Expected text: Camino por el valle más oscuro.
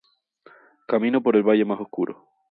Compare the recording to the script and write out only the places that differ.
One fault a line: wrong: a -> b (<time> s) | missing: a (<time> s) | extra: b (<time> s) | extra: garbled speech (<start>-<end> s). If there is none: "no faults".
no faults